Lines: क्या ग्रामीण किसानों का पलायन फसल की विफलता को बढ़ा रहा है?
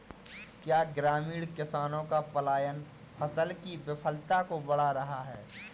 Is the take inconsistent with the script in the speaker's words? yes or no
no